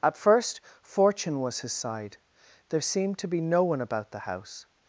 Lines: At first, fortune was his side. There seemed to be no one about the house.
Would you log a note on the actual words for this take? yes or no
no